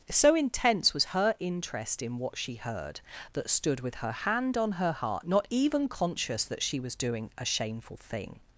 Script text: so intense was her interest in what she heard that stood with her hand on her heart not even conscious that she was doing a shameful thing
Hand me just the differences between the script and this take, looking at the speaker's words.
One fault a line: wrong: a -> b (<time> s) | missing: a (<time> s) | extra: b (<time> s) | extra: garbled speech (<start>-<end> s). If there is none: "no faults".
no faults